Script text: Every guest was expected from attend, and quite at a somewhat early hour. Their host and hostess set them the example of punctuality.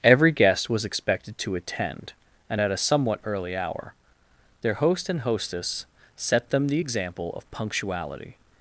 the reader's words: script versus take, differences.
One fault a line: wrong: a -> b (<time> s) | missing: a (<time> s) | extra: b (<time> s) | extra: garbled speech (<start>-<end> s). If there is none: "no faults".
wrong: from -> to (1.4 s)
missing: quite (2.6 s)